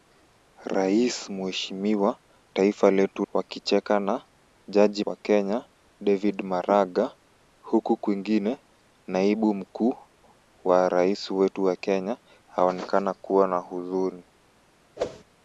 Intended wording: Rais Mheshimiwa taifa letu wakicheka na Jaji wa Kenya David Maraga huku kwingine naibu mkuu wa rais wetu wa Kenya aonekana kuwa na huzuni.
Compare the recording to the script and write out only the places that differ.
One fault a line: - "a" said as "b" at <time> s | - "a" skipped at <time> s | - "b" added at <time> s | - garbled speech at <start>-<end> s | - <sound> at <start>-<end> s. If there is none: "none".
- whoosh at 15.0-15.2 s